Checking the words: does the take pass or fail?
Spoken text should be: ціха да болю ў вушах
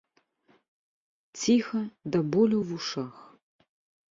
pass